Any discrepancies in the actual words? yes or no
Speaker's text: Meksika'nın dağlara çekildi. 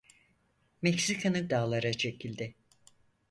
no